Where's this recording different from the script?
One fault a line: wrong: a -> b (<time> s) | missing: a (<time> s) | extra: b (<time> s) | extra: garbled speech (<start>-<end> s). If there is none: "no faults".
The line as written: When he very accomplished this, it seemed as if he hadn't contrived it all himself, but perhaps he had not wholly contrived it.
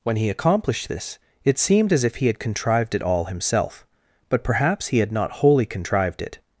missing: very (0.3 s)
wrong: hadn't -> had (2.3 s)